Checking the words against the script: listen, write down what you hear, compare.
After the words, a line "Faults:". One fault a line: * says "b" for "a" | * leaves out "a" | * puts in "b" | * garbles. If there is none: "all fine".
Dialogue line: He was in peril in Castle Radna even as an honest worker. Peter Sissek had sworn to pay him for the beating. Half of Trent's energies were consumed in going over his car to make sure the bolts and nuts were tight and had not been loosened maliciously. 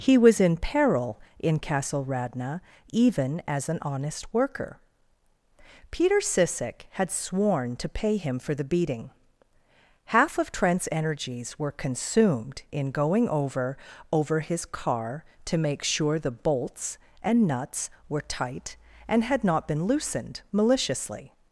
He was in peril in Castle Radna even as an honest worker. Peter Sissek had sworn to pay him for the beating. Half of Trent's energies were consumed in going over over his car to make sure the bolts and nuts were tight and had not been loosened maliciously.
Faults:
* puts in "over"